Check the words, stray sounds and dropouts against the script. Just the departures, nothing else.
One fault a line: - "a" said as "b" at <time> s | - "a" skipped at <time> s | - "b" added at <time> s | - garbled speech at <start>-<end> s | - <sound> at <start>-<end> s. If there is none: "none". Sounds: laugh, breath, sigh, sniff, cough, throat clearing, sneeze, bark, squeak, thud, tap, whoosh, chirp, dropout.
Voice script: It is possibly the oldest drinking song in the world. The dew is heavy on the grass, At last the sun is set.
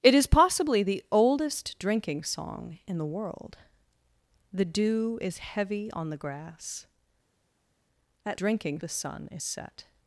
- "last" said as "drinking" at 8.3 s